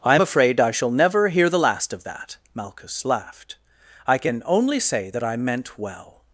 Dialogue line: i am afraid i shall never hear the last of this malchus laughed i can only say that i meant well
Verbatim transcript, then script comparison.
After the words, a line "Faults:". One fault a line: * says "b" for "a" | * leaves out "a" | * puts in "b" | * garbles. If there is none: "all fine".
i am afraid i shall never hear the last of that malchus laughed i can only say that i meant well
Faults:
* says "that" for "this"